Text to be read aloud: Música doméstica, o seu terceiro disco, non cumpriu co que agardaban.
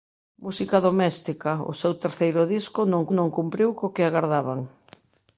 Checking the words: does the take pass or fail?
fail